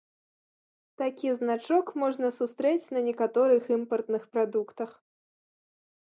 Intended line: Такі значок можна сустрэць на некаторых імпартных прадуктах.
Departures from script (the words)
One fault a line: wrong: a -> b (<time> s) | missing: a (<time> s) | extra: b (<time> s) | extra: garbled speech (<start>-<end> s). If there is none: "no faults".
no faults